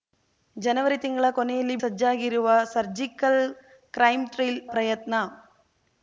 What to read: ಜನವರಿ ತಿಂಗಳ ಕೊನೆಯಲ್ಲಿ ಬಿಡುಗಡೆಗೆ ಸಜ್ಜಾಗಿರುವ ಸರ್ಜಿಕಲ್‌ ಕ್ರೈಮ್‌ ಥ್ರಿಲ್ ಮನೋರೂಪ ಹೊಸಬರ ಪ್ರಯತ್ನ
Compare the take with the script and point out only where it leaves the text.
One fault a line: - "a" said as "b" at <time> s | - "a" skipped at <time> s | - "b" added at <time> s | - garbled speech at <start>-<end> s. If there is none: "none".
- "ಬಿಡುಗಡೆಗೆ" skipped at 1.7 s
- "ಮನೋರೂಪ ಹೊಸಬರ" skipped at 4.6 s